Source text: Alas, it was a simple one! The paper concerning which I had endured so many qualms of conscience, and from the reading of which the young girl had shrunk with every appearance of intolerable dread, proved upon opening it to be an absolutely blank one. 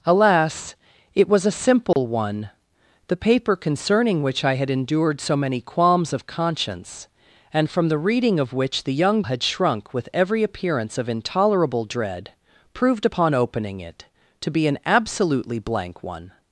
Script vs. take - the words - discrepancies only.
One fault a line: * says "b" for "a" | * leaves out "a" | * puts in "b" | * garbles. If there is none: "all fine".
* leaves out "girl"